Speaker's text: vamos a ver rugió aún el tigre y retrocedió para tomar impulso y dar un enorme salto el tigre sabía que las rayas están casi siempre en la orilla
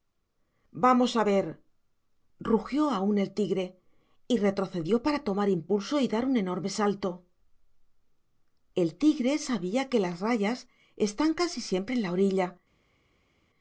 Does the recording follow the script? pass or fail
pass